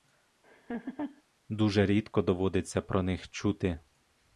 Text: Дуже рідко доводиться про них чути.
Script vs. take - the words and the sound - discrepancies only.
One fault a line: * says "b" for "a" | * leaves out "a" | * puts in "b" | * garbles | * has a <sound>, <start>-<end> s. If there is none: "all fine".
* has a laugh, 0.4-1.2 s